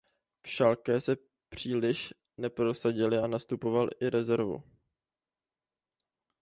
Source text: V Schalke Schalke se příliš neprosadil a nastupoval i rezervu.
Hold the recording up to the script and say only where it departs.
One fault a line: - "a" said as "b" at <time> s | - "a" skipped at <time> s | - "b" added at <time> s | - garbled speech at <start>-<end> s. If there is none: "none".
- "Schalke" skipped at 1.0 s